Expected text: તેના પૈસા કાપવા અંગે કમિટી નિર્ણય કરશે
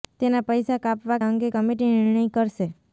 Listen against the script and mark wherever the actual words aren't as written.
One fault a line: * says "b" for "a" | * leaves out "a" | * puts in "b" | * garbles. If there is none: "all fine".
all fine